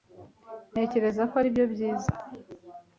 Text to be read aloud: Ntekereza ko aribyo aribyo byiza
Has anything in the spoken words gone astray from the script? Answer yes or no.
yes